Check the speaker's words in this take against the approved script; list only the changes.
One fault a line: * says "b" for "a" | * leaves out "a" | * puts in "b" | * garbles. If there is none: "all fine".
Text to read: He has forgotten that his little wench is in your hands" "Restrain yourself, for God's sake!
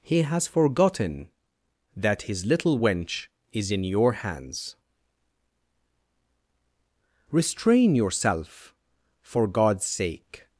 all fine